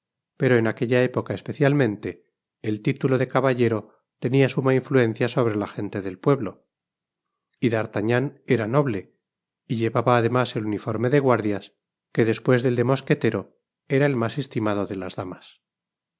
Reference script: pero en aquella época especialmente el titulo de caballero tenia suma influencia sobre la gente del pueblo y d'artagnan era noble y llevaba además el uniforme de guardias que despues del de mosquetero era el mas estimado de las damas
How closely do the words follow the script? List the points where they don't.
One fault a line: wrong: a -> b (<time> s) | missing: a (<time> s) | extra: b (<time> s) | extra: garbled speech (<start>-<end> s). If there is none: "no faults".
no faults